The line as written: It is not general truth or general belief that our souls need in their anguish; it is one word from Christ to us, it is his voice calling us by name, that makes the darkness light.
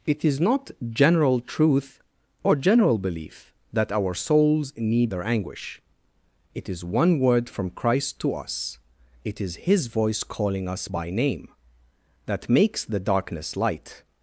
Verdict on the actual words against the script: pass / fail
fail